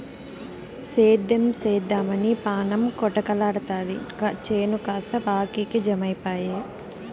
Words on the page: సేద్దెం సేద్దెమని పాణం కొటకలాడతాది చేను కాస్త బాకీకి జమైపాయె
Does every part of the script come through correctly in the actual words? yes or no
yes